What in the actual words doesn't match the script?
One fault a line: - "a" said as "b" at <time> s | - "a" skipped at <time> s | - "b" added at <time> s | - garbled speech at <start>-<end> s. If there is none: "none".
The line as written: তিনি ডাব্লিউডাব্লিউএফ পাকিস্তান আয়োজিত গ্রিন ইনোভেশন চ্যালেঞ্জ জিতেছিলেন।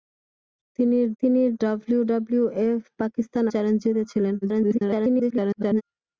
- "তিনি" added at 1.2 s
- "আয়োজিত গ্রিন ইনোভেশন" skipped at 3.4 s
- garbled speech at 4.4-5.8 s